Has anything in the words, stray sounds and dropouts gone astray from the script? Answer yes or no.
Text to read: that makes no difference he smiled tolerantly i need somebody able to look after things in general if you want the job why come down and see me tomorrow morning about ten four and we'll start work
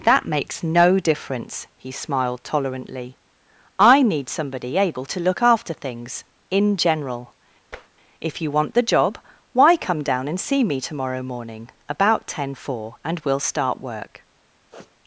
yes